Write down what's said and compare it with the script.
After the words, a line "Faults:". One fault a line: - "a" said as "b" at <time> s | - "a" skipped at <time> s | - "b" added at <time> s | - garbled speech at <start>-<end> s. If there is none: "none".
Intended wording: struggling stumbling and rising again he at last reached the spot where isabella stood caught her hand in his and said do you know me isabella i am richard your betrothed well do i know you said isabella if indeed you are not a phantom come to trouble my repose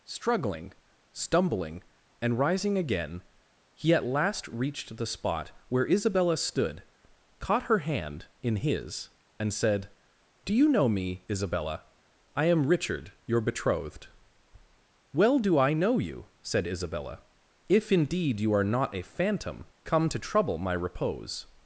struggling stumbling and rising again he at last reached the spot where isabella stood caught her hand in his and said do you know me isabella i am richard your betrothed well do i know you said isabella if indeed you are not a phantom come to trouble my repose
Faults:
none